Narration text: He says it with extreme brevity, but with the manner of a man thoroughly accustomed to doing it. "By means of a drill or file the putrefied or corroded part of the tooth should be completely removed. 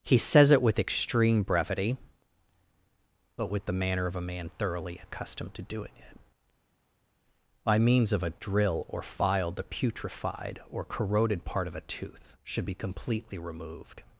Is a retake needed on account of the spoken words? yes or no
yes